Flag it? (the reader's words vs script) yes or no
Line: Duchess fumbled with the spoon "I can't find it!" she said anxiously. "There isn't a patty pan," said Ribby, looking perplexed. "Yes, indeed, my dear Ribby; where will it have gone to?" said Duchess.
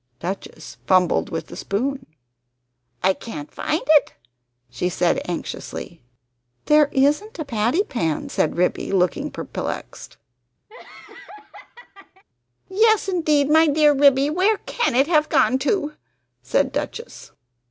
yes